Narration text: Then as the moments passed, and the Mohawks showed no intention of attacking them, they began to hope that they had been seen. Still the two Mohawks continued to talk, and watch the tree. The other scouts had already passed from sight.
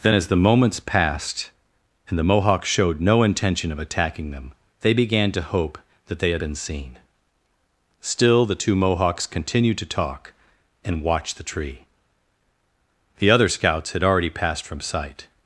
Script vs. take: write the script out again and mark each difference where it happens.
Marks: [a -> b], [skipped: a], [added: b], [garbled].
Then as the moments passed, and the Mohawks showed no intention of attacking them, they began to hope that they had been seen. Still the two Mohawks continued to talk, and watch the tree. The other scouts had already passed from sight.